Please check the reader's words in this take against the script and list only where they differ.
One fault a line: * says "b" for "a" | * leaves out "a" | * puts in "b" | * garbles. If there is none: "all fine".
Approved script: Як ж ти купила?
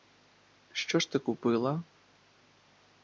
* says "Що" for "Як"